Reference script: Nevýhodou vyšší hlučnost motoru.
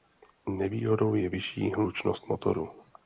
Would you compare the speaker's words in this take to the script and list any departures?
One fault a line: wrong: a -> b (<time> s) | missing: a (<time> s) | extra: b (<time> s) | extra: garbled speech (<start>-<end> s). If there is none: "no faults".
extra: je (1.1 s)